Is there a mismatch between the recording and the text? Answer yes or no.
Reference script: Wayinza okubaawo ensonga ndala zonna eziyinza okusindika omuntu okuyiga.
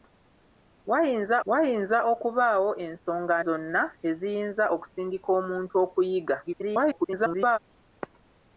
yes